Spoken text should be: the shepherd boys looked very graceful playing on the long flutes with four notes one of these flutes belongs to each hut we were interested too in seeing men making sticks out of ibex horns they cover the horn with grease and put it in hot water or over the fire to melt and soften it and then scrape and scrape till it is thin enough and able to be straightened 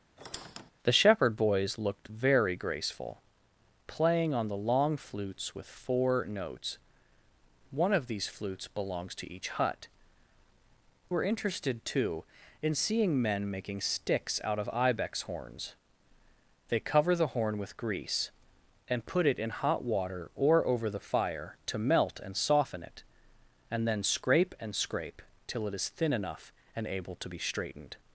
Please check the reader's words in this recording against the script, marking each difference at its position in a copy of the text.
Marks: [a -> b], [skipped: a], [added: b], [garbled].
the shepherd boys looked very graceful playing on the long flutes with four notes one of these flutes belongs to each hut [skipped: we] were interested too in seeing men making sticks out of ibex horns they cover the horn with grease and put it in hot water or over the fire to melt and soften it and then scrape and scrape till it is thin enough and able to be straightened